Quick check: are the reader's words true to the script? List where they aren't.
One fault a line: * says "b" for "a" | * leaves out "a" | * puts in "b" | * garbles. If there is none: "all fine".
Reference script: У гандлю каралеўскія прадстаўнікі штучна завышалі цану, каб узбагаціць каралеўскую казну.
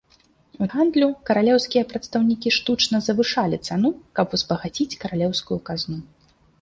all fine